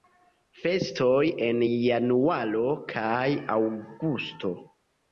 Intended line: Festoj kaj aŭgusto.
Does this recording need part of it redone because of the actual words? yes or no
yes